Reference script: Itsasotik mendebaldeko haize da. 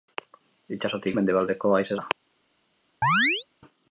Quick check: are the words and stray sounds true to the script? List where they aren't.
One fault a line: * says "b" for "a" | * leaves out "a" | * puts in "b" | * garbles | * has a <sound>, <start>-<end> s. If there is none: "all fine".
* has a chirp, 3.0-3.5 s